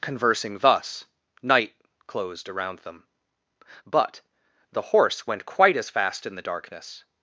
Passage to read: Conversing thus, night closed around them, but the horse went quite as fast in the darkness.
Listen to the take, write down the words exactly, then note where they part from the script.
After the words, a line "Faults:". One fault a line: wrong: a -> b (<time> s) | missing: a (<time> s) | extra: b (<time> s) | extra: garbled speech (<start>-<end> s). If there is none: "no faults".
Conversing thus, night closed around them, but the horse went quite as fast in the darkness.
Faults:
no faults